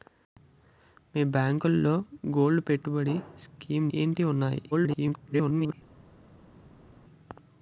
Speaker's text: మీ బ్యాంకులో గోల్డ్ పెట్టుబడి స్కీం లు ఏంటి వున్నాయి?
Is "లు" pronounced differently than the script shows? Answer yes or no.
yes